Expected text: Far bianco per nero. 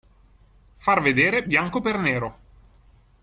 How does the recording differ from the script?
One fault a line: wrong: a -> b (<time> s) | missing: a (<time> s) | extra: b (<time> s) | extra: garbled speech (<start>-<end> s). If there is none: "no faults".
extra: vedere (1.0 s)